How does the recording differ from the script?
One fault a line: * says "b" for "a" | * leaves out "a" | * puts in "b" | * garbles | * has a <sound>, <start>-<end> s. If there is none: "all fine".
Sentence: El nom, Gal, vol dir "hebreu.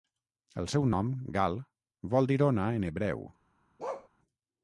* puts in "seu"
* puts in "ona en"
* has a bark, 3.8-4.1 s